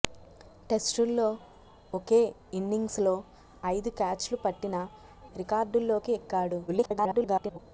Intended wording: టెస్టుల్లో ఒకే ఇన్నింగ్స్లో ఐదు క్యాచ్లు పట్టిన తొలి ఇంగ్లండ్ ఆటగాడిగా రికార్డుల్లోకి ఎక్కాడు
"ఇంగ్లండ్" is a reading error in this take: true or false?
true